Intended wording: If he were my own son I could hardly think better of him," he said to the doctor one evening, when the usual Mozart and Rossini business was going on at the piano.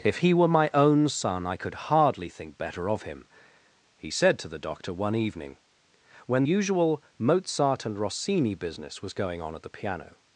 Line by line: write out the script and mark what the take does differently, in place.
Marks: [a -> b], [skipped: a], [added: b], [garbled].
If he were my own son I could hardly think better of him," he said to the doctor one evening, when [skipped: the] usual Mozart and Rossini business was going on at the piano.